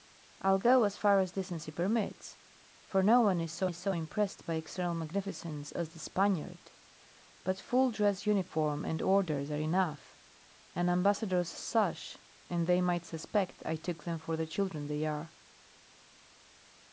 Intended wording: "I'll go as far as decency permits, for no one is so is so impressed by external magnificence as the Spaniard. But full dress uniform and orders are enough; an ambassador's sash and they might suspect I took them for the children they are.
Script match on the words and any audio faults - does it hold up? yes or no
yes